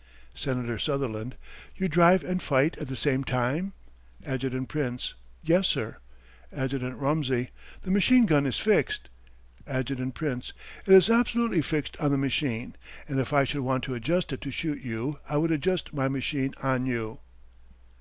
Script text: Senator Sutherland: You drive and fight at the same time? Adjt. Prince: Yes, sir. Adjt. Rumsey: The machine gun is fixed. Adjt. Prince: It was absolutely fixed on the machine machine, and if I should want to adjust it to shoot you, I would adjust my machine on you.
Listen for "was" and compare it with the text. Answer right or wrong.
wrong